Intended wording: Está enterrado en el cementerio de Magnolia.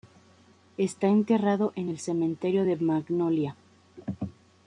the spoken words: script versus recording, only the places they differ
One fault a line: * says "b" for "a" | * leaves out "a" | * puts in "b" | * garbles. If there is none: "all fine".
all fine